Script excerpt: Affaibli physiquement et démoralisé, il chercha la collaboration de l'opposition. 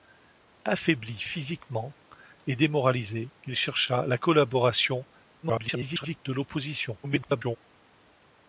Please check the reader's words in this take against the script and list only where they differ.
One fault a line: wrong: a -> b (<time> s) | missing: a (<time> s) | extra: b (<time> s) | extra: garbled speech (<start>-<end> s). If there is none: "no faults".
extra: garbled speech (5.4-6.2 s)
extra: garbled speech (7.0-7.6 s)